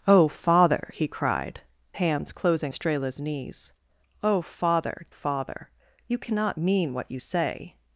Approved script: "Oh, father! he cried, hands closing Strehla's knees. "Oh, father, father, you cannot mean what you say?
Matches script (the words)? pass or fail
pass